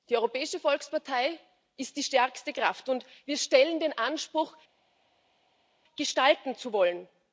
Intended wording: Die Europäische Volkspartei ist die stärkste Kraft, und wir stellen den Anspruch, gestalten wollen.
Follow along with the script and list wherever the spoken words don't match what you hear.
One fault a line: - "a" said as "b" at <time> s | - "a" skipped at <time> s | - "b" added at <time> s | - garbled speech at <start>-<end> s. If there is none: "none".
- "zu" added at 6.6 s